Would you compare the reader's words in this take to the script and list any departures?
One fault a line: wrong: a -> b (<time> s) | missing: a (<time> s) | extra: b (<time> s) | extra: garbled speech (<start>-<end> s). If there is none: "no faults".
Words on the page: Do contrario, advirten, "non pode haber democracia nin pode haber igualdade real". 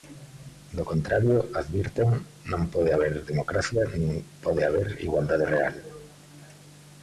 no faults